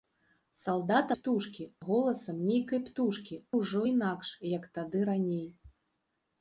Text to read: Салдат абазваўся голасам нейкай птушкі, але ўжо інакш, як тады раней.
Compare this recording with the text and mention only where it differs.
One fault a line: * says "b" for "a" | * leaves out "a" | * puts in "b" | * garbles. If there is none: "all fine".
* says "птушкі" for "абазваўся"
* leaves out "але"